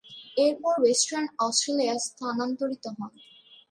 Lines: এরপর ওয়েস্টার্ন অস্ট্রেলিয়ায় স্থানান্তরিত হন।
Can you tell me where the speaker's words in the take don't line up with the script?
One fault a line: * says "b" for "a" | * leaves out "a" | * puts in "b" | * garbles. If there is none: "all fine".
all fine